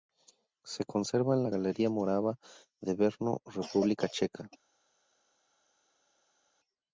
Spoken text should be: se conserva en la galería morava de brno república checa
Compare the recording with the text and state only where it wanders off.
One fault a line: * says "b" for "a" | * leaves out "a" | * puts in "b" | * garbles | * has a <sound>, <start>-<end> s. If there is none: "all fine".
all fine